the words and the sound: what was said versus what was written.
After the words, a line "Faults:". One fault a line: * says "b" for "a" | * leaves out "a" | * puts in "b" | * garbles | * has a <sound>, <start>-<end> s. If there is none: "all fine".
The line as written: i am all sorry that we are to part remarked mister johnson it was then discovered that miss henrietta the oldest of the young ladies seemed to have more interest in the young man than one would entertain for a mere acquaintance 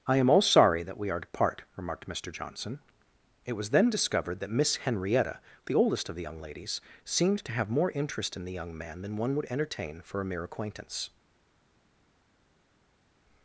i am all sorry that we are to part remarked mister johnson it was then discovered that miss henrietta the oldest of the young ladies seemed to have more interest in the young man than one would entertain for a mere acquaintance
Faults:
all fine